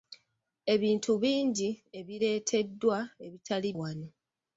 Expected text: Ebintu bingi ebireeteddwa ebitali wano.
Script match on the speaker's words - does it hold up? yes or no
yes